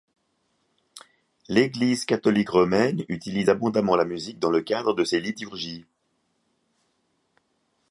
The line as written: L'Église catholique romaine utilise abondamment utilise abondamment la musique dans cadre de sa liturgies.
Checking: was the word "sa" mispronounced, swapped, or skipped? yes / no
yes